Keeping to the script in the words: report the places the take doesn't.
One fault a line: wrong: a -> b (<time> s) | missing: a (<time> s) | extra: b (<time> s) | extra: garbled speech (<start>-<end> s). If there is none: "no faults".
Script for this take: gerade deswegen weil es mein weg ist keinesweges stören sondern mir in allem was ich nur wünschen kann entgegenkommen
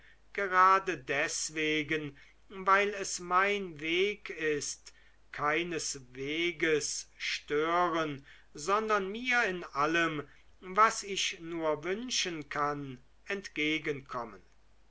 no faults